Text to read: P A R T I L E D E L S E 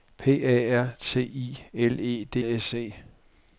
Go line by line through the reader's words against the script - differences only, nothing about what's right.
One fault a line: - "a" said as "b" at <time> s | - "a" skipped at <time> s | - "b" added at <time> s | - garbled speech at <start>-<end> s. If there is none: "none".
- "E L" skipped at 2.4 s